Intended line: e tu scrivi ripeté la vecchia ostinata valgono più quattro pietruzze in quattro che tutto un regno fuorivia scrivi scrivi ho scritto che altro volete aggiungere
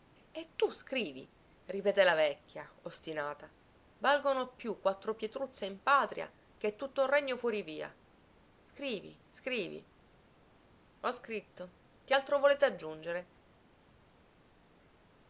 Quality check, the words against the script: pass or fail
fail